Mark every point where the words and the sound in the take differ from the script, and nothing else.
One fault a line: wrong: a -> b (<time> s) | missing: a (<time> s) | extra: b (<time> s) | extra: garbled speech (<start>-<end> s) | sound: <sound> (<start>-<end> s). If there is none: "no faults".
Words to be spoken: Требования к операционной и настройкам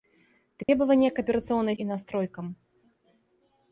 sound: dropout (0.6-0.7 s)